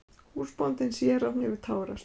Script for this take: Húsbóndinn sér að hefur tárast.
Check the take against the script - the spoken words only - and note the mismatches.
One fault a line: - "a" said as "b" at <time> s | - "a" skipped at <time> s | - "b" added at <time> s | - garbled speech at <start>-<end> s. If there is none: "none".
none